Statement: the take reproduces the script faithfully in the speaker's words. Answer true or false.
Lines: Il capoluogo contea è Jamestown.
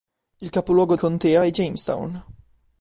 true